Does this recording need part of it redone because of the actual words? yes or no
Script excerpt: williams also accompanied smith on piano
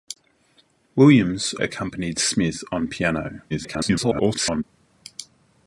yes